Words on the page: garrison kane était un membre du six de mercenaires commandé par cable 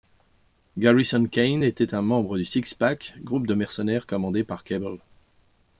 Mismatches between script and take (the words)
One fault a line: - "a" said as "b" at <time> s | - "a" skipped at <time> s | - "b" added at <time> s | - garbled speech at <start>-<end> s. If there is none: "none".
- "pack groupe" added at 2.7 s